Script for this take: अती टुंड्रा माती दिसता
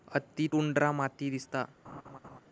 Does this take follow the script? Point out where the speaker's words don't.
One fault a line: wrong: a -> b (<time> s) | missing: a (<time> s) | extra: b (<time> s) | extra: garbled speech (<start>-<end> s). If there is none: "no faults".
no faults